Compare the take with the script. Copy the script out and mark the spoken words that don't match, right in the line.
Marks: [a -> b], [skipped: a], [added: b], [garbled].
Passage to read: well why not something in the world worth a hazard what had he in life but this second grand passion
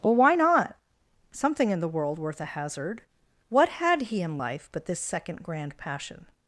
well why not something in the world worth a hazard what had he in life but this second grand passion